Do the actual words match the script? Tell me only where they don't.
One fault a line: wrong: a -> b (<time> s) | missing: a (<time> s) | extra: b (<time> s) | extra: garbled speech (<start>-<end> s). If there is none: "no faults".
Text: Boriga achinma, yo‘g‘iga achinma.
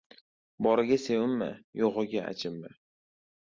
wrong: achinma -> sevinma (1.0 s)